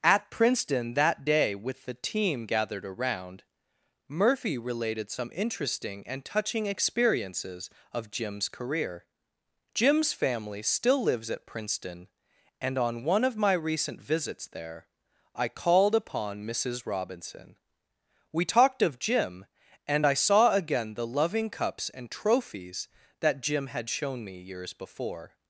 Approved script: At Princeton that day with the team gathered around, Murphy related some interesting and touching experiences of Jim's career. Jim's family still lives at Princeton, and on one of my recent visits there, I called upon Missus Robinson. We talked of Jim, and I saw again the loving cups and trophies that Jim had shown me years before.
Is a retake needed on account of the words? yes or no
no